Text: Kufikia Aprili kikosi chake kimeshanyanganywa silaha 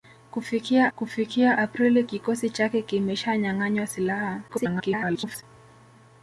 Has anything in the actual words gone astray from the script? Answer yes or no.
yes